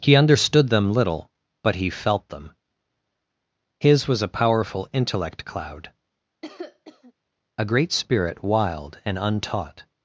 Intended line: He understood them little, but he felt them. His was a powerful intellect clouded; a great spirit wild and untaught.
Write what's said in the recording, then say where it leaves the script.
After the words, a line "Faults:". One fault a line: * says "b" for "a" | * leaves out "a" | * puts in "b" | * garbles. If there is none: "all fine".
He understood them little, but he felt them. His was a powerful intellect cloud; a great spirit wild and untaught.
Faults:
* says "cloud" for "clouded"